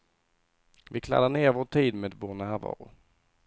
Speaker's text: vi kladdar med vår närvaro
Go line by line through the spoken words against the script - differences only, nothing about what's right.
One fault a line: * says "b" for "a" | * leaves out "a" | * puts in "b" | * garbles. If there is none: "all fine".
* puts in "ner vår tid"